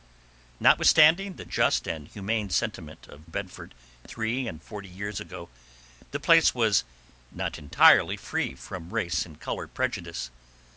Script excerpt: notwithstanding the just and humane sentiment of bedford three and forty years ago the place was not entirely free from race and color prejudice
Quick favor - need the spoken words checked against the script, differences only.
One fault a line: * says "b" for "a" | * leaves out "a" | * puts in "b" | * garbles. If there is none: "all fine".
all fine